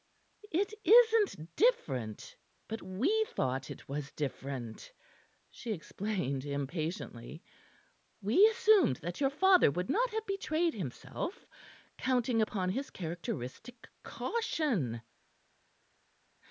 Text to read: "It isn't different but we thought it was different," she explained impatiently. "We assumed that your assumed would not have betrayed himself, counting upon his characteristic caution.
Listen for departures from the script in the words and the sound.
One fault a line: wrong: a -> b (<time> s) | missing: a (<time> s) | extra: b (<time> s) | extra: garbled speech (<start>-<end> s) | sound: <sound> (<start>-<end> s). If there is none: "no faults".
wrong: assumed -> father (9.3 s)